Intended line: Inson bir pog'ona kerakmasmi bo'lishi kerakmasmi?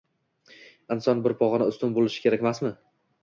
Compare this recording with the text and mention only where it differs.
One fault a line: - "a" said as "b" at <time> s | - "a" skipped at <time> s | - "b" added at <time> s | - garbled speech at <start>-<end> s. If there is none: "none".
- "kerakmasmi" said as "ustun" at 1.7 s